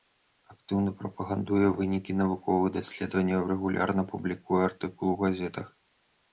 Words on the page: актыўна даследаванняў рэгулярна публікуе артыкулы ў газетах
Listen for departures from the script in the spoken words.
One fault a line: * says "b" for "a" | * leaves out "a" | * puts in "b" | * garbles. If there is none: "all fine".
* puts in "прапагандуе вынікі навуковых"